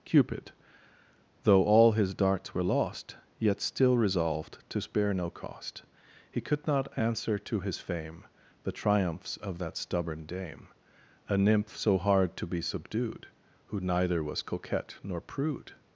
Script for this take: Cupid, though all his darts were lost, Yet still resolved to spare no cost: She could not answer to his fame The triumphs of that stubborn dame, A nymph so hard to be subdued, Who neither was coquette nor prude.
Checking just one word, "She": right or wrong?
wrong